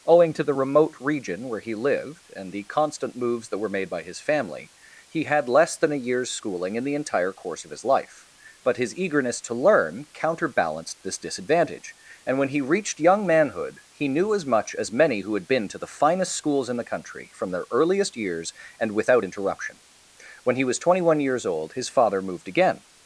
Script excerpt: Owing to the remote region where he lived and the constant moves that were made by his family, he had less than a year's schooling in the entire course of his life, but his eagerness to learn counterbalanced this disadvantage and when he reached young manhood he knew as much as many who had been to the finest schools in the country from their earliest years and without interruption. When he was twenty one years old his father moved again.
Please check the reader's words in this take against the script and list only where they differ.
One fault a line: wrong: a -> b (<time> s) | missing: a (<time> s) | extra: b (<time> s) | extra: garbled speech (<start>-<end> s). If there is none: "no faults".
no faults